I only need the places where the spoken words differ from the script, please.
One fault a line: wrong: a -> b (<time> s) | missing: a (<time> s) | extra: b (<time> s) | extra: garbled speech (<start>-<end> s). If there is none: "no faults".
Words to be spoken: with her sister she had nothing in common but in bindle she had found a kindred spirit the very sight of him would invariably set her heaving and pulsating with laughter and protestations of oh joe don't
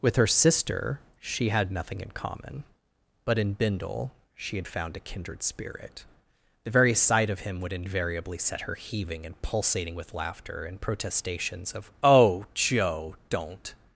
no faults